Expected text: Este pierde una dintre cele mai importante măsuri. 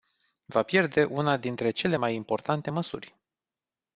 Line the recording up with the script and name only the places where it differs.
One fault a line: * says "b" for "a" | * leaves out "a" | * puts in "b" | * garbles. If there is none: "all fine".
* says "Va" for "Este"